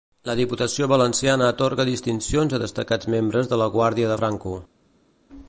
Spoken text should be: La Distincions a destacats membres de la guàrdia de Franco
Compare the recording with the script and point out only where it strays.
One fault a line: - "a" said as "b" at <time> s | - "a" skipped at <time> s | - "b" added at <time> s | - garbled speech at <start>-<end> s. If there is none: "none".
- "Diputació valenciana atorga" added at 0.4 s